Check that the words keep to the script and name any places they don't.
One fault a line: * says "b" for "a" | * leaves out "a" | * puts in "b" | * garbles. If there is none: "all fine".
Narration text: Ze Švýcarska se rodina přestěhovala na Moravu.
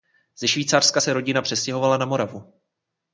all fine